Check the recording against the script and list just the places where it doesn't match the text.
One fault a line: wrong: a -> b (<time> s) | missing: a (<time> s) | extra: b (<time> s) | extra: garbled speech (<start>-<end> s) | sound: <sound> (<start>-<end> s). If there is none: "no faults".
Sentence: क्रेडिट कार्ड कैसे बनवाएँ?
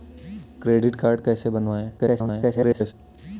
extra: garbled speech (2.0-2.9 s)